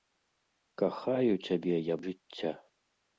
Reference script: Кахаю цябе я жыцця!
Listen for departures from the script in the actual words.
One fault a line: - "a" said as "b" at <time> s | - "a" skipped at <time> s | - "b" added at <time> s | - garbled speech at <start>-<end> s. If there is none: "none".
none